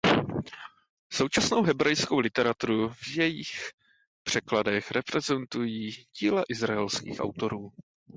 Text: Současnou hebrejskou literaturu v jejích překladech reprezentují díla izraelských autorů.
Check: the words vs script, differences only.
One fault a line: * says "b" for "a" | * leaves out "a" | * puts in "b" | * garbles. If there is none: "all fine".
all fine